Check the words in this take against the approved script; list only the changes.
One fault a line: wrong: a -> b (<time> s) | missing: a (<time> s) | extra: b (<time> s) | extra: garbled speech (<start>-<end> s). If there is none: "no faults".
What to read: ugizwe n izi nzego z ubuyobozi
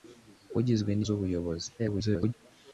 missing: izi nzego (1.0 s)
extra: garbled speech (1.8-2.3 s)